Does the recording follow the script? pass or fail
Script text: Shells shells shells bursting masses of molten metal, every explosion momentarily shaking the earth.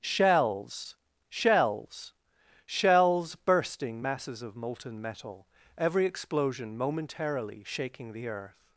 pass